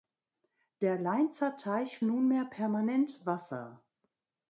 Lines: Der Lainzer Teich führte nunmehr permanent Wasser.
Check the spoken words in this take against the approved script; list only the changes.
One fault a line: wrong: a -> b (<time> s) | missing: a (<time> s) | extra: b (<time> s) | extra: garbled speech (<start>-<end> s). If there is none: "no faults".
missing: führte (2.0 s)